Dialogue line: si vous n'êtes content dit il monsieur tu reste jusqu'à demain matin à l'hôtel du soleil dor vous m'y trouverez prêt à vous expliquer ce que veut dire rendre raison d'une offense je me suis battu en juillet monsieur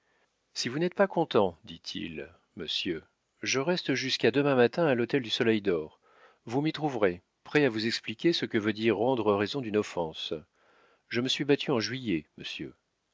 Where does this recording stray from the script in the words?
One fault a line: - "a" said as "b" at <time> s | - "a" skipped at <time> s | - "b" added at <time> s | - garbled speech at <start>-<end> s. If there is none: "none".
- "pas" added at 0.9 s
- "tu" said as "je" at 3.4 s